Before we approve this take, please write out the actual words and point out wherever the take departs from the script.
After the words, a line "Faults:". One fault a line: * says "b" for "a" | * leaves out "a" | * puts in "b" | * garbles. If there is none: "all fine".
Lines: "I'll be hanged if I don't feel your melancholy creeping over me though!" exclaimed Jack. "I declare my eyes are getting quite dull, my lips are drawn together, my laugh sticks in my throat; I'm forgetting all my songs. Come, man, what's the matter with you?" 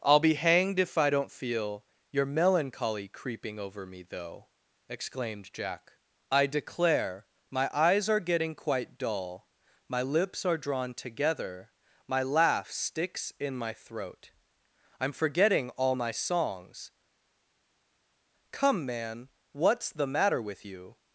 "I'll be hanged if I don't feel your melancholy creeping over me though!" exclaimed Jack. "I declare my eyes are getting quite dull, my lips are drawn together, my laugh sticks in my throat; I'm forgetting all my songs. Come, man, what's the matter with you?"
Faults:
all fine